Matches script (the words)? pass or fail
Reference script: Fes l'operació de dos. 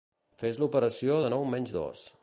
fail